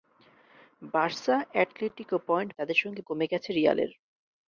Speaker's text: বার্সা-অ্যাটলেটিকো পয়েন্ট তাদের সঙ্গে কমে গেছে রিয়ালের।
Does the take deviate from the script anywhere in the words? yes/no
no